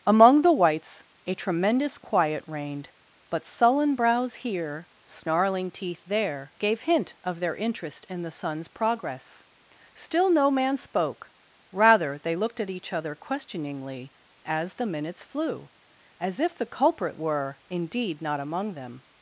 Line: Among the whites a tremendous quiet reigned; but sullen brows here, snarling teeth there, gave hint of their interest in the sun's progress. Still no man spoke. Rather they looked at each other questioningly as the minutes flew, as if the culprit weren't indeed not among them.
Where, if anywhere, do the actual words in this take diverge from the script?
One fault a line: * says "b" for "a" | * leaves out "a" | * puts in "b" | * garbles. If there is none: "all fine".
* says "were" for "weren't"